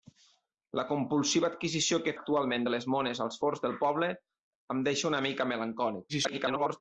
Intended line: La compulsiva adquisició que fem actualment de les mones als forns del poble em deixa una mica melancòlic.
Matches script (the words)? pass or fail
fail